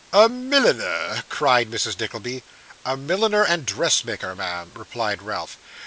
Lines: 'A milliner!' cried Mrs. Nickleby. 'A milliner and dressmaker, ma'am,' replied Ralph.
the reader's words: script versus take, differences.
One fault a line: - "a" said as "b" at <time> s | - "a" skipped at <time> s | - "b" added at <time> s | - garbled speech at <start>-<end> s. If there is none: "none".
none